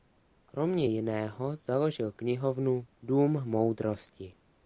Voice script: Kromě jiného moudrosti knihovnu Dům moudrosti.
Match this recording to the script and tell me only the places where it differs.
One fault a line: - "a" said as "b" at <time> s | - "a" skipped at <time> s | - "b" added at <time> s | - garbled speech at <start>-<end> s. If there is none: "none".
- "moudrosti" said as "založil" at 1.6 s